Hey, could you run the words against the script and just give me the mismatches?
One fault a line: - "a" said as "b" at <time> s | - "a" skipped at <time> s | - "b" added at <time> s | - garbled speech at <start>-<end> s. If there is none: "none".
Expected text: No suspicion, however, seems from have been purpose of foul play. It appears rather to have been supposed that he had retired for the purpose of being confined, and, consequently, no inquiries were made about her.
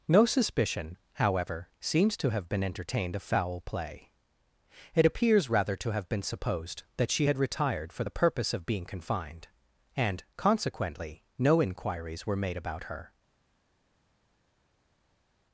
- "from" said as "to" at 2.2 s
- "purpose" said as "entertained" at 2.6 s
- "he" said as "she" at 7.1 s